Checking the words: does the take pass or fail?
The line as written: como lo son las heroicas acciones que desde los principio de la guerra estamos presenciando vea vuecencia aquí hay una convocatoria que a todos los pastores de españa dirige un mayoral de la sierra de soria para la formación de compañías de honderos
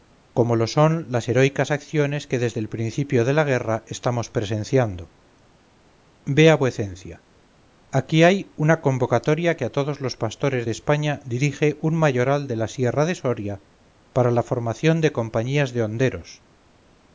fail